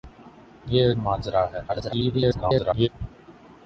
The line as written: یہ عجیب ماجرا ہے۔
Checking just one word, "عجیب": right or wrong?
wrong